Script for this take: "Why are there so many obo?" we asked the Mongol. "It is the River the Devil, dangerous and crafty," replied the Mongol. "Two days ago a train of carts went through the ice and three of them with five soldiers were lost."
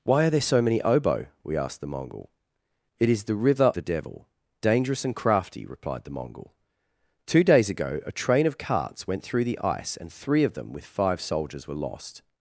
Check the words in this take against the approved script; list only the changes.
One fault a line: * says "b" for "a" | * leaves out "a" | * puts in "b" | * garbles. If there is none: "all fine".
all fine